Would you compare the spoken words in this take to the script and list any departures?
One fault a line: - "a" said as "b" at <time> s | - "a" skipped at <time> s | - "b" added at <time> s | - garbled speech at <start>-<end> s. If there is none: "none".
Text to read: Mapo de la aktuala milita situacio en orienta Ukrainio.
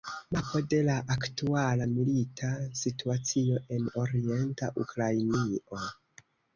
none